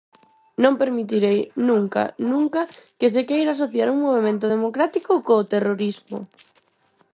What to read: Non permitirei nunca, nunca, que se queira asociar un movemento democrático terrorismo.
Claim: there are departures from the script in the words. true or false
true